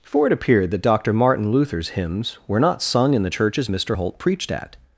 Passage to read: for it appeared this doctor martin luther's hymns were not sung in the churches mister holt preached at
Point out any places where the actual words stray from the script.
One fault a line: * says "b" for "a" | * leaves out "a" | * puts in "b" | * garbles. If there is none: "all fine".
* says "that" for "this"